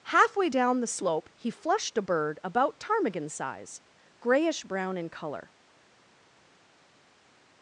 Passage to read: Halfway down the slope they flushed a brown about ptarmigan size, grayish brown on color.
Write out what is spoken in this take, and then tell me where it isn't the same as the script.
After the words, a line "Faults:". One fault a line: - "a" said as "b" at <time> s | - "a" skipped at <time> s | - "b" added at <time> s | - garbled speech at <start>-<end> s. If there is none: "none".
Halfway down the slope he flushed a bird about ptarmigan size, grayish brown in color.
Faults:
- "they" said as "he" at 1.3 s
- "brown" said as "bird" at 2.0 s
- "on" said as "in" at 5.0 s